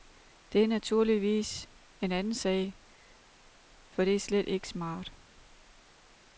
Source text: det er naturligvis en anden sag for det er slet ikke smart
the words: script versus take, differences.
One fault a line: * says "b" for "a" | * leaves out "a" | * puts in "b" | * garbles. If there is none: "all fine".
all fine